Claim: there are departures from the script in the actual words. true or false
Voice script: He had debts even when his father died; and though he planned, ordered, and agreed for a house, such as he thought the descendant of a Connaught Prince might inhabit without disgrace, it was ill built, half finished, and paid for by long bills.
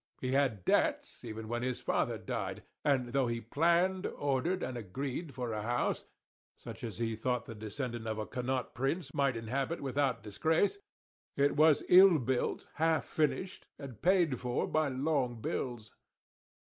false